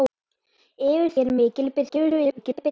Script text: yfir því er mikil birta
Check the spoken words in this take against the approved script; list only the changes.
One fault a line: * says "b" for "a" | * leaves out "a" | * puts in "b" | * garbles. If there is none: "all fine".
* leaves out "því"
* garbles